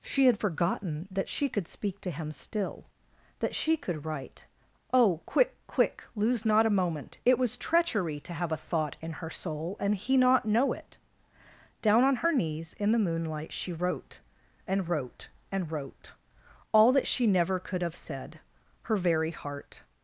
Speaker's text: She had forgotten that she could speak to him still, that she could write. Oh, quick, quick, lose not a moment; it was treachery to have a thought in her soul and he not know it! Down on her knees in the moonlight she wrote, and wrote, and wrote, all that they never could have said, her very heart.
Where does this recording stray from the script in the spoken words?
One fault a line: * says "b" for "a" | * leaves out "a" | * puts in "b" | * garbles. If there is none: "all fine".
* says "she" for "they"